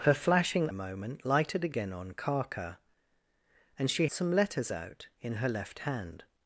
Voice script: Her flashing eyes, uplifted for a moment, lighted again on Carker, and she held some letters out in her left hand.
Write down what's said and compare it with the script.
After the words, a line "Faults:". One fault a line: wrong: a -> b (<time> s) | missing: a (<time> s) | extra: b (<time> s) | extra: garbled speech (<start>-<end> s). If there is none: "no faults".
Her flashing a moment, lighted again on Carker, and she some letters out in her left hand.
Faults:
missing: eyes uplifted for (0.7 s)
missing: held (4.1 s)